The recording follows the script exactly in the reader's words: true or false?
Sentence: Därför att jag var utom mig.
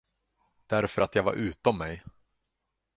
true